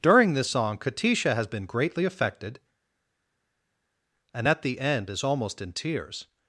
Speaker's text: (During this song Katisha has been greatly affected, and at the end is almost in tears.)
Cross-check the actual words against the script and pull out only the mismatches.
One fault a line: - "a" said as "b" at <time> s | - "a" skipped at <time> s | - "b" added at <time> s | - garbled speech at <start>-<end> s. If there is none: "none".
none